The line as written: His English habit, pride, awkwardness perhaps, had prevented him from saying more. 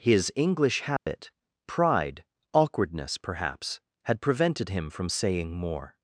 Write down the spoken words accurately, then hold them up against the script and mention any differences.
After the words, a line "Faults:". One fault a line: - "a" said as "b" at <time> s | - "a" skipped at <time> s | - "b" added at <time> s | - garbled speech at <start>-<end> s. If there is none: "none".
His English habit, pride, awkwardness perhaps, had prevented him from saying more.
Faults:
none